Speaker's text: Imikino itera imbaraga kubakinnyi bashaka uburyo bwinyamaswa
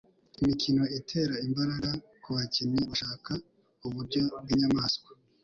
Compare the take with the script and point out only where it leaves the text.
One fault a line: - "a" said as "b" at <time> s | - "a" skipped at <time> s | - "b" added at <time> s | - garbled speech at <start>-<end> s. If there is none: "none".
none